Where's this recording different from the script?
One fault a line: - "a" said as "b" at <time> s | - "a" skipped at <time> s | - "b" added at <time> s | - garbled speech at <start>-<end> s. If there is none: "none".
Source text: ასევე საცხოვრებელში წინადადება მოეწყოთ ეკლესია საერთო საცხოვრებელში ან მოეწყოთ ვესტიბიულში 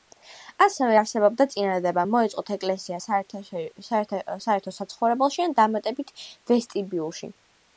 - "საცხოვრებელში" said as "არსებობდა" at 1.0 s
- "მოეწყოთ" said as "დამატებით" at 5.6 s